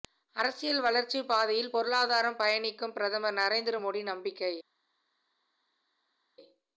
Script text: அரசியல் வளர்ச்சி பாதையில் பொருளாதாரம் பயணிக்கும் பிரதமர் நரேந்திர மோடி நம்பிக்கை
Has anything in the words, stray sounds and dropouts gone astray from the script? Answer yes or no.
no